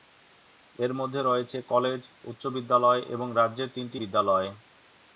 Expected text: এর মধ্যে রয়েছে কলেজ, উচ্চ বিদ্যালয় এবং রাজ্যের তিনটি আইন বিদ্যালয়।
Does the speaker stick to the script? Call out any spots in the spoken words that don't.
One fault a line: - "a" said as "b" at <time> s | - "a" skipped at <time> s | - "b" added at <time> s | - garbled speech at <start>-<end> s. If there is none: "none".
- "আইন" skipped at 4.0 s